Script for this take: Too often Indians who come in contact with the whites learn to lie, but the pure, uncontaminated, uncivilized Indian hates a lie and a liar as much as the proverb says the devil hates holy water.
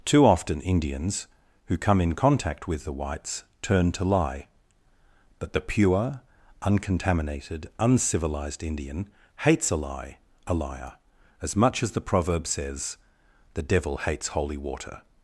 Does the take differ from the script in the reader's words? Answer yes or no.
yes